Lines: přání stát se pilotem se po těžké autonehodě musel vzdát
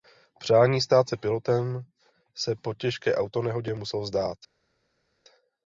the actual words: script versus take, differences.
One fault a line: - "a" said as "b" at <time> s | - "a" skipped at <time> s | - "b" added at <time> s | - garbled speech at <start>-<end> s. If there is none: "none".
none